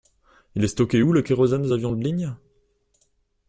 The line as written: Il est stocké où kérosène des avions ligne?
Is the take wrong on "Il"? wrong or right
right